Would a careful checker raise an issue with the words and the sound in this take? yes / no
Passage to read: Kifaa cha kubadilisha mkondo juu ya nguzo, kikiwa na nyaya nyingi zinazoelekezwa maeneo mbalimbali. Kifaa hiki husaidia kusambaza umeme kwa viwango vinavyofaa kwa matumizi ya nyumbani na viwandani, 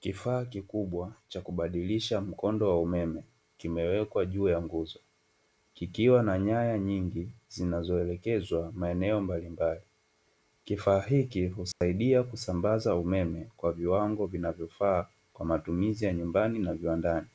yes